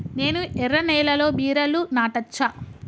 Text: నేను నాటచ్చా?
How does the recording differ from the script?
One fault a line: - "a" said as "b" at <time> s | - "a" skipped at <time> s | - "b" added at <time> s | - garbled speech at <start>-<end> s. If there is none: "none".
- "ఎర్ర నేలలో బీరలు" added at 0.6 s